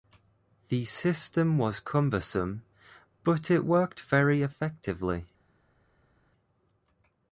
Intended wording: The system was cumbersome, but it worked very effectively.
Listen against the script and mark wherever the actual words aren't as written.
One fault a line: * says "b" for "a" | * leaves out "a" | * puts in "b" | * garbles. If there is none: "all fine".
all fine